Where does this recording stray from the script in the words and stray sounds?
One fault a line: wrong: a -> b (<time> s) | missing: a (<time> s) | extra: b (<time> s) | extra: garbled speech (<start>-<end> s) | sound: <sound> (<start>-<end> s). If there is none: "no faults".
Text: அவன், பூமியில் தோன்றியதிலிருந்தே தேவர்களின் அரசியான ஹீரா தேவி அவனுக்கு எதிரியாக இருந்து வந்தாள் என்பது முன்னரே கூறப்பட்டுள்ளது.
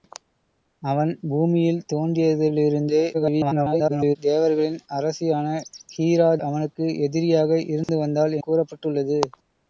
extra: garbled speech (3.1-4.2 s)
missing: தேவி (6.3 s)
sound: dropout (7.8-7.9 s)
missing: என்பது முன்னரே (8.4 s)